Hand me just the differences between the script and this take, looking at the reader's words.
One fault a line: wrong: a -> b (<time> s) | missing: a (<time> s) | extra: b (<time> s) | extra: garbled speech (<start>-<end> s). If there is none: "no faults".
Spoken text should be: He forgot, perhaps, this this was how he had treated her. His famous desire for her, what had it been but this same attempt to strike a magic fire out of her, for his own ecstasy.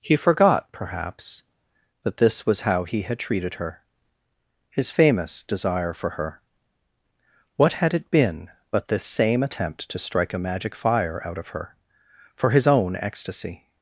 wrong: this -> that (2.0 s)